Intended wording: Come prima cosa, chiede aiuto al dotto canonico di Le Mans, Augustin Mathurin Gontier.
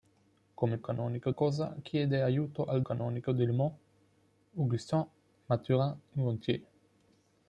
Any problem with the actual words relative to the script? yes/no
yes